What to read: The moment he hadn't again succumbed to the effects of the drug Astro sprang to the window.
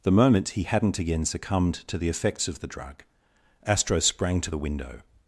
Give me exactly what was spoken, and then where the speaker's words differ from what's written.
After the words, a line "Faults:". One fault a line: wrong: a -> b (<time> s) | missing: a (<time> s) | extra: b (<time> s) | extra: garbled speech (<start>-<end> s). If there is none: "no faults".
The moment he hadn't again succumbed to the effects of the drug Astro sprang to the window.
Faults:
no faults